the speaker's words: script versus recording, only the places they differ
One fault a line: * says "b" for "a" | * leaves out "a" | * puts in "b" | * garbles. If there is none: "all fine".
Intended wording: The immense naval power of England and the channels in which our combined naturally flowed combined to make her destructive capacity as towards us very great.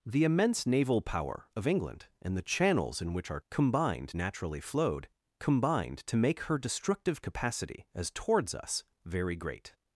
all fine